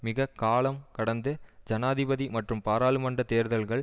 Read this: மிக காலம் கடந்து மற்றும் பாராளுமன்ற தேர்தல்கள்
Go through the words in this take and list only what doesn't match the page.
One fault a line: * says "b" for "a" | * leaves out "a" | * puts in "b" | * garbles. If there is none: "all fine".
* puts in "ஜனாதிபதி"